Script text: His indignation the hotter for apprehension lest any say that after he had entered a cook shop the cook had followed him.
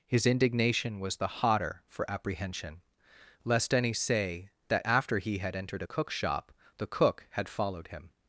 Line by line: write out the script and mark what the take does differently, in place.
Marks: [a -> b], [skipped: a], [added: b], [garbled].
His indignation [added: was] the hotter for apprehension lest any say that after he had entered a cook shop the cook had followed him.